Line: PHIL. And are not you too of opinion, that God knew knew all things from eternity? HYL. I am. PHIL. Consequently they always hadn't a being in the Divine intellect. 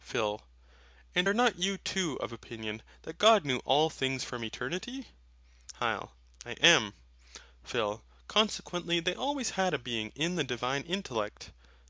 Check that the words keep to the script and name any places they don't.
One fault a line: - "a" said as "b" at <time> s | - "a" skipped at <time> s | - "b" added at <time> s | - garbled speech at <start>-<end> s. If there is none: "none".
- "knew" skipped at 3.6 s
- "hadn't" said as "had" at 9.6 s